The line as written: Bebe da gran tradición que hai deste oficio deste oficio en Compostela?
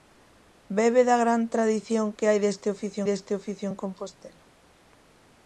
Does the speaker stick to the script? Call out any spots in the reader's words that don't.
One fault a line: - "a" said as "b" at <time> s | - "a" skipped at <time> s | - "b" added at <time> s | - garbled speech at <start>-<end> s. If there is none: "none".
none